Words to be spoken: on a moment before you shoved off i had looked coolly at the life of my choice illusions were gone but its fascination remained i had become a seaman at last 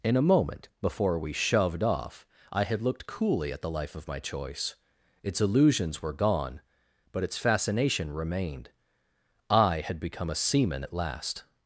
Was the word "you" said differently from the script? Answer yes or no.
yes